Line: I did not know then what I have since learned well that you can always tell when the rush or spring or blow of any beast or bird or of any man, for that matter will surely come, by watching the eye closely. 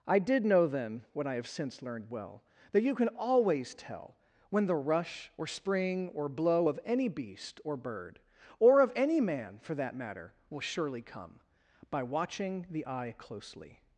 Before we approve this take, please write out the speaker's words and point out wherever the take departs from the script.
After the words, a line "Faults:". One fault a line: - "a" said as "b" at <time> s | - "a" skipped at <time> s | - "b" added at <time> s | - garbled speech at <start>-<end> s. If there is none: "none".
I did know then what I have since learned well that you can always tell when the rush or spring or blow of any beast or bird or of any man, for that matter will surely come, by watching the eye closely.
Faults:
- "not" skipped at 0.5 s